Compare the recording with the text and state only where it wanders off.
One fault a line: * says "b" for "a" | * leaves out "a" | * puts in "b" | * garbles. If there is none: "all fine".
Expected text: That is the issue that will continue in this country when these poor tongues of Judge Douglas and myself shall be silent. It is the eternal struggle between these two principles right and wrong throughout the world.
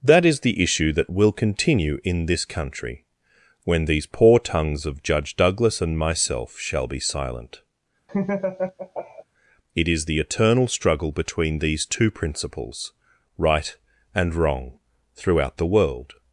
all fine